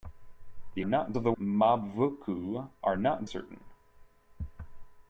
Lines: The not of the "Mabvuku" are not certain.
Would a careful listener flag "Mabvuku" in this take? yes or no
no